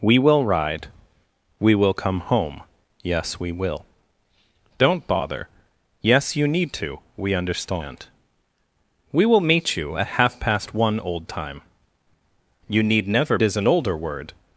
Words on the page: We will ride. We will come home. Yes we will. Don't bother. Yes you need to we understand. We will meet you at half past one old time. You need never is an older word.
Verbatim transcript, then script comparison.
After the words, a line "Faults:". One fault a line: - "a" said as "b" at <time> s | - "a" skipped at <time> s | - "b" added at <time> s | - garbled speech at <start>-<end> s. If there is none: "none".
We will ride. We will come home. Yes we will. Don't bother. Yes you need to we understand. We will meet you at half past one old time. You need never is an older word.
Faults:
none